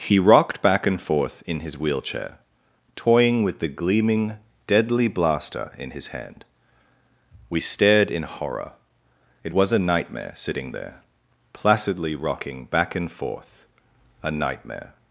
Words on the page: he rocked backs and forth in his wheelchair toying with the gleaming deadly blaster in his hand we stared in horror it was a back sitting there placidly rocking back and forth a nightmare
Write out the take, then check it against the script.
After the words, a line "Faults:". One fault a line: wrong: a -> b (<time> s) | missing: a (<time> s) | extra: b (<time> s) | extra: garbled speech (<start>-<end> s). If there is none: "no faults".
he rocked back and forth in his wheelchair toying with the gleaming deadly blaster in his hand we stared in horror it was a nightmare sitting there placidly rocking back and forth a nightmare
Faults:
wrong: backs -> back (0.6 s)
wrong: back -> nightmare (9.8 s)